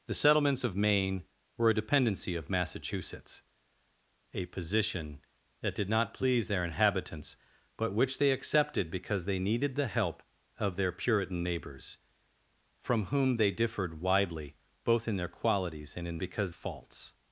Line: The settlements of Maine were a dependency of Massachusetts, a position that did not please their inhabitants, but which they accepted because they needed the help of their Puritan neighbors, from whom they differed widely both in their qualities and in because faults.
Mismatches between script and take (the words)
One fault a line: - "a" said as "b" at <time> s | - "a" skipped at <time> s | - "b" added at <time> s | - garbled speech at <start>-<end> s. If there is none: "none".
none